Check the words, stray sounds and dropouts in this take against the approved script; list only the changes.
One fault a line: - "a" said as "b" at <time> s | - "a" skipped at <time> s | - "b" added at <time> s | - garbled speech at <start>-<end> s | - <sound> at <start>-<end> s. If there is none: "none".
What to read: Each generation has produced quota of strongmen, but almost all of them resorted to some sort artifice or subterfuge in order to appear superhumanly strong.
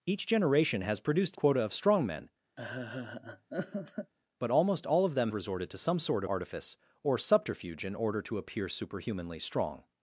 - laugh at 2.6-4.1 s